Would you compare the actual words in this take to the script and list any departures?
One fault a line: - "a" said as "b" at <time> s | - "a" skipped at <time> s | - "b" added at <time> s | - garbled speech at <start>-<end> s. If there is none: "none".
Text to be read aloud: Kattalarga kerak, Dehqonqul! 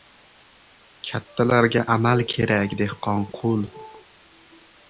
- "amal" added at 1.9 s